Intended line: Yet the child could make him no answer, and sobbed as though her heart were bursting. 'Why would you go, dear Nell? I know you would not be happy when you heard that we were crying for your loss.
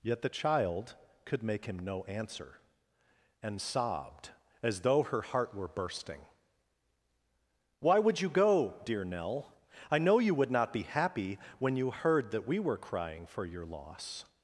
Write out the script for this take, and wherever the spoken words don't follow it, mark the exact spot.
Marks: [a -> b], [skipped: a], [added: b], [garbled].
Yet the child could make him no answer, and sobbed as though her heart were bursting. 'Why would you go, dear Nell? I know you would not be happy when you heard that we were crying for your loss.